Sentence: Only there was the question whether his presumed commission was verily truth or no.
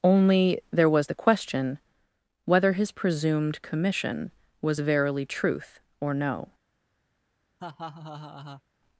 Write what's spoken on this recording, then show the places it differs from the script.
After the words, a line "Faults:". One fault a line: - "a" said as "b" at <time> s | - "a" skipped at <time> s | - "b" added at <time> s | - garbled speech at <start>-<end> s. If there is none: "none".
Only there was the question whether his presumed commission was verily truth or no.
Faults:
none